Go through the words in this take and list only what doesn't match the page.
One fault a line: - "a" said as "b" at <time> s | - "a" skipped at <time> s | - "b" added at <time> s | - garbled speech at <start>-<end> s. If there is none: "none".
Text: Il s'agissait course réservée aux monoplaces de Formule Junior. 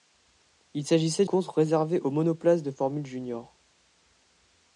none